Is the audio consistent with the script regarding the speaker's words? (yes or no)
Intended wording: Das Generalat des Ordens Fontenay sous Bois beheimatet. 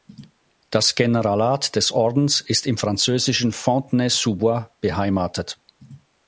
no